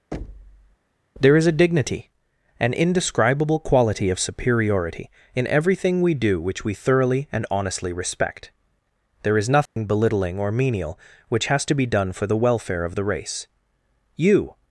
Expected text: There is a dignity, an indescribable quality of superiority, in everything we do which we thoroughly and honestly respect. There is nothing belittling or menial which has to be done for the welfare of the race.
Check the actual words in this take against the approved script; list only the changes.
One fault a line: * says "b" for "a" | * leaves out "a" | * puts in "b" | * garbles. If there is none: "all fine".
* puts in "You"